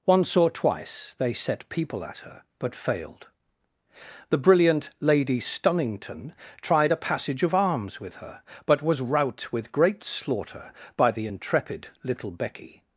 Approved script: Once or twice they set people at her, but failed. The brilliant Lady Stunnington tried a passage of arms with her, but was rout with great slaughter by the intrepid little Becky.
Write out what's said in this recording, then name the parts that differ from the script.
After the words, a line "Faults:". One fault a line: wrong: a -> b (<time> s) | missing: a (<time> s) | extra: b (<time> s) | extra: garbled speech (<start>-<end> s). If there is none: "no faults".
Once or twice they set people at her, but failed. The brilliant Lady Stunnington tried a passage of arms with her, but was rout with great slaughter by the intrepid little Becky.
Faults:
no faults